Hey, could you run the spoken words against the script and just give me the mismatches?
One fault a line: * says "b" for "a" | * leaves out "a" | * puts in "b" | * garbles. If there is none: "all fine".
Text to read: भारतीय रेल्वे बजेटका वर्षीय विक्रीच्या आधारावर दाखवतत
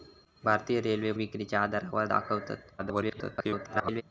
* leaves out "बजेटका वर्षीय"
* garbles